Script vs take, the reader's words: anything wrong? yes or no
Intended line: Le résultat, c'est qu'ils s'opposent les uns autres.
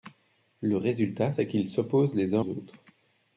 no